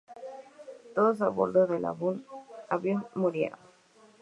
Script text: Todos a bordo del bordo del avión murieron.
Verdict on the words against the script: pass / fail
fail